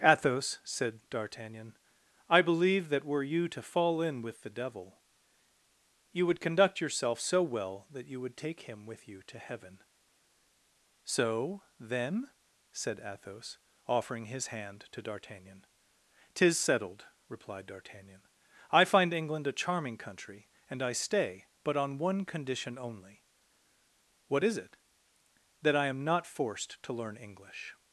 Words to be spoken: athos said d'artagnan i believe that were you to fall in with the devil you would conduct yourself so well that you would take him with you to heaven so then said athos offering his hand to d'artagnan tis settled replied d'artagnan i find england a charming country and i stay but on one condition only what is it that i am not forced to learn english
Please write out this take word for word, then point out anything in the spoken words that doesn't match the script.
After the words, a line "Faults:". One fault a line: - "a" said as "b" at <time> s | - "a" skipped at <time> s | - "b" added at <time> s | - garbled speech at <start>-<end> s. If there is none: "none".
athos said d'artagnan i believe that were you to fall in with the devil you would conduct yourself so well that you would take him with you to heaven so then said athos offering his hand to d'artagnan tis settled replied d'artagnan i find england a charming country and i stay but on one condition only what is it that i am not forced to learn english
Faults:
none